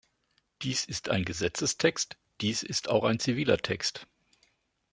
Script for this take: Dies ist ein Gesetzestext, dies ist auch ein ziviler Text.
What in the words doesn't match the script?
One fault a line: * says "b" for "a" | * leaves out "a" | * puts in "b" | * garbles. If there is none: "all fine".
all fine